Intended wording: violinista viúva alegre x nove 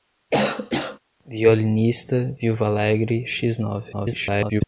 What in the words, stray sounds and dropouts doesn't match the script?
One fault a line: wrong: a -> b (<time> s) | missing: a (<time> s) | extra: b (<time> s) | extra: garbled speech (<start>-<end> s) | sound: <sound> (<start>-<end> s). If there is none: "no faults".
sound: cough (0.3-1.0 s)
extra: garbled speech (3.9-4.6 s)